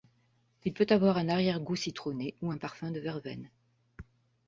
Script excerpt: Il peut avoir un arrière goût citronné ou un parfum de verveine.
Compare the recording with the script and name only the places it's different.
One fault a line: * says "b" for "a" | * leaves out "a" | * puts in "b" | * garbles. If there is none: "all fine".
all fine